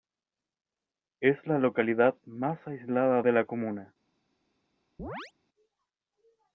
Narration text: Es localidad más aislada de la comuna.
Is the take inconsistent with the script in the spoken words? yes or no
yes